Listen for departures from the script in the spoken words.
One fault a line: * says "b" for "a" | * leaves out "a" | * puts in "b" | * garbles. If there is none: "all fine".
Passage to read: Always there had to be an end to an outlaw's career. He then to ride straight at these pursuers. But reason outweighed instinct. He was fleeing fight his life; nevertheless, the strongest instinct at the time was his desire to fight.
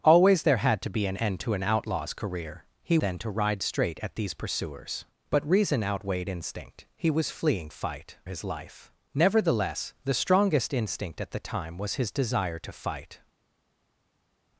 all fine